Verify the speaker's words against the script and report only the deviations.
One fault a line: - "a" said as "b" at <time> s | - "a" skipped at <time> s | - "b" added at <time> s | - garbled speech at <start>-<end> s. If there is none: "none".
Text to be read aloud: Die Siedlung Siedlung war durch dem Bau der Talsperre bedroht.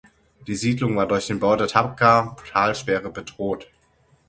- "Siedlung" skipped at 0.9 s
- "dem" said as "den" at 1.3 s
- "Tabqa" added at 1.7 s